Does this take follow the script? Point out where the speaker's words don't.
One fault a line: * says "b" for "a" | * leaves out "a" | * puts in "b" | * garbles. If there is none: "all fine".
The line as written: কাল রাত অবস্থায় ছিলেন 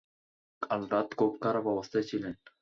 * puts in "খুব খারাপ"